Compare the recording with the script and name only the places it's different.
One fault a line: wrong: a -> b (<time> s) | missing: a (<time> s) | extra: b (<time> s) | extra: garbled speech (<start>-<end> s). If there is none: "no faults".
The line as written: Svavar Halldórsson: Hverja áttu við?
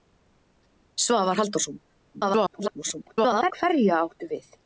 extra: garbled speech (2.1-3.5 s)